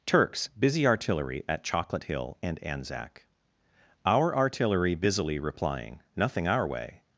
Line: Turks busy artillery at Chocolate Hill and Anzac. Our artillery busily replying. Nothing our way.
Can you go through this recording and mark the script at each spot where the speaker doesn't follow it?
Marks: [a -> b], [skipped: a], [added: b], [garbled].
Turks busy artillery at Chocolate Hill and Anzac. Our artillery busily replying. Nothing our way.